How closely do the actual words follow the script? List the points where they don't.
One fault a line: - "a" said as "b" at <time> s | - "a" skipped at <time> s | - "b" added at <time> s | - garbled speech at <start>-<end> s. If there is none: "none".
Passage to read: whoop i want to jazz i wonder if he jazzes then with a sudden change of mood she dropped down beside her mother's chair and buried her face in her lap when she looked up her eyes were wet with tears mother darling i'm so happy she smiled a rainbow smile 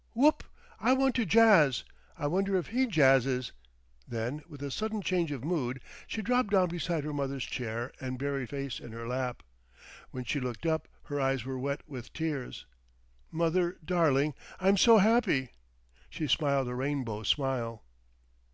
- "her" skipped at 8.5 s